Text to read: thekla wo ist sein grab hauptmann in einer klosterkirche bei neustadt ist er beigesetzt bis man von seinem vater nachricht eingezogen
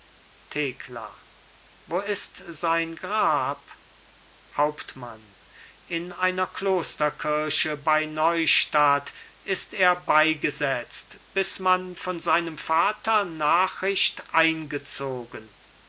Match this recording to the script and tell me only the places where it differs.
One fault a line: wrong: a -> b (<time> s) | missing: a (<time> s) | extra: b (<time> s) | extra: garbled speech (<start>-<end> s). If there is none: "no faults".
no faults